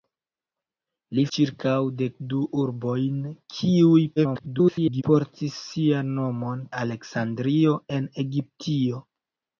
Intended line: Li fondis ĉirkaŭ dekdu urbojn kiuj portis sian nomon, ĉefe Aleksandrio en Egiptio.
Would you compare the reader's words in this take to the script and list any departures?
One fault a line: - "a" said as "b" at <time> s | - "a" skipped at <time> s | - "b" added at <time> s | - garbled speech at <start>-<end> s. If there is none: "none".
- "fondis" skipped at 1.2 s
- garbled speech at 4.2-5.0 s
- "ĉefe" skipped at 6.7 s